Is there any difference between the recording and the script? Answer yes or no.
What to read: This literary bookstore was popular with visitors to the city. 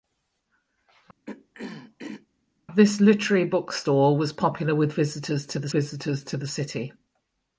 yes